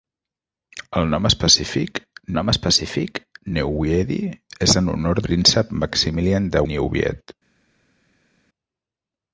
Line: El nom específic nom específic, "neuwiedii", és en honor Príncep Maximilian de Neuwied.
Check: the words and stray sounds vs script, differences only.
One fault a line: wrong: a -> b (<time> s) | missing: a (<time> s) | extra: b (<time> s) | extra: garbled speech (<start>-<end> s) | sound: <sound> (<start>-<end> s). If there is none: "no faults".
no faults